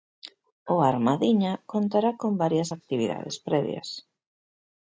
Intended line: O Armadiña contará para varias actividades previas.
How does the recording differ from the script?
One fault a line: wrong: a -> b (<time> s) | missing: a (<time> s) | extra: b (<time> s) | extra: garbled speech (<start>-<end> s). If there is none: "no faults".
wrong: para -> con (2.2 s)